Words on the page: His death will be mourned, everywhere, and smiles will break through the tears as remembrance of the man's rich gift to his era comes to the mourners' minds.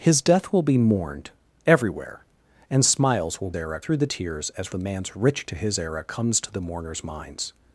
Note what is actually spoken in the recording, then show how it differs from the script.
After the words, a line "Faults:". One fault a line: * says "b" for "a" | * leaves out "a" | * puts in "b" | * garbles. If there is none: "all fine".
His death will be mourned, everywhere, and smiles will era through the tears as the man's rich to his era comes to the mourners' minds.
Faults:
* says "era" for "break"
* leaves out "remembrance of"
* leaves out "gift"